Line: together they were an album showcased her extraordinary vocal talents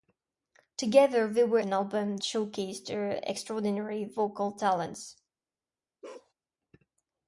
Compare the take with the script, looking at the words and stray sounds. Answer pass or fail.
fail